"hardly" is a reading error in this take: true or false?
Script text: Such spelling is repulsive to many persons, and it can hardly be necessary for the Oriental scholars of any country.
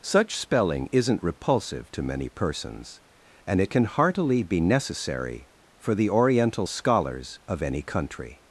true